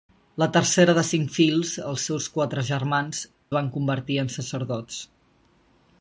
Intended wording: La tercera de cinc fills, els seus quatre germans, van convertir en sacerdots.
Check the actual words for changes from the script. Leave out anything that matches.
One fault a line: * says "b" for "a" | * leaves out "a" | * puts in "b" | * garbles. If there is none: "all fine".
all fine